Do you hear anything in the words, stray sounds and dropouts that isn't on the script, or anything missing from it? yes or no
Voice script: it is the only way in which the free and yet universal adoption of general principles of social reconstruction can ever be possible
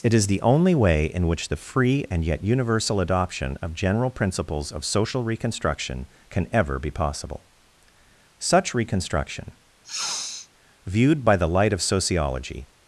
yes